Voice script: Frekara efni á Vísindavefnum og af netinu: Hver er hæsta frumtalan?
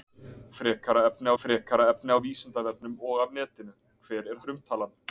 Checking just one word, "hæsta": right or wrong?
wrong